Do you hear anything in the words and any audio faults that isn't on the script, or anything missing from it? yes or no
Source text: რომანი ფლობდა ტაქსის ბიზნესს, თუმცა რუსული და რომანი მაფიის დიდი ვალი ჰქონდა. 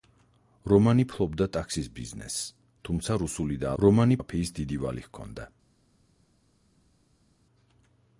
no